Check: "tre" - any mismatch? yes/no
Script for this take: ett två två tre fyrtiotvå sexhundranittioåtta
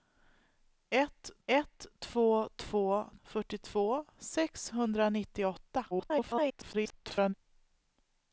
yes